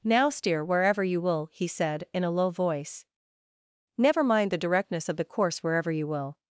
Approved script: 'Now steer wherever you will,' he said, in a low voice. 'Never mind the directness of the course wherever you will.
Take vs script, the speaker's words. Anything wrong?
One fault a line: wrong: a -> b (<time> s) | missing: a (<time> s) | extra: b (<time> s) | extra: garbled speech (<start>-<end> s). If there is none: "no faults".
no faults